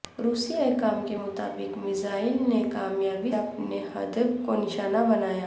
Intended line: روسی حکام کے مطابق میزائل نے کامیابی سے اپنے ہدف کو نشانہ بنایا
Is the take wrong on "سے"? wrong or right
wrong